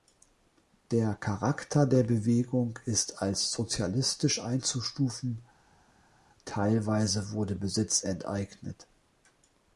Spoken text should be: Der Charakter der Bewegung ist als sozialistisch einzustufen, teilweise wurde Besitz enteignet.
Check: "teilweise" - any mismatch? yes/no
no